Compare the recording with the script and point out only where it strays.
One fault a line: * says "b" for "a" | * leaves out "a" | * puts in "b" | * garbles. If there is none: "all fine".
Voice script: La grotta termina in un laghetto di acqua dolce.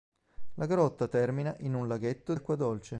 * leaves out "di"